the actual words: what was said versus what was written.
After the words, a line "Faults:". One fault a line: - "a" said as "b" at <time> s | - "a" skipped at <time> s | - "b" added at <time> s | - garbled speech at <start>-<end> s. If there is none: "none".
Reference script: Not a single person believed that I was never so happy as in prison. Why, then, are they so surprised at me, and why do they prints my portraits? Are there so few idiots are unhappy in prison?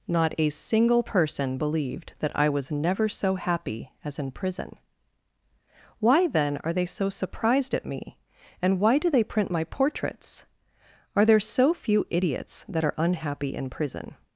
Not a single person believed that I was never so happy as in prison. Why, then, are they so surprised at me, and why do they print my portraits? Are there so few idiots that are unhappy in prison?
Faults:
- "prints" said as "print" at 9.2 s
- "that" added at 12.7 s